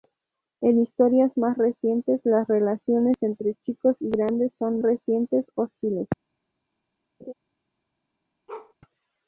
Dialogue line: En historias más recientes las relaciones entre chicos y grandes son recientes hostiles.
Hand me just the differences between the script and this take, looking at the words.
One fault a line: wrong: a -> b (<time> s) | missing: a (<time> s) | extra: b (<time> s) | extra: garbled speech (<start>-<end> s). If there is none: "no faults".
no faults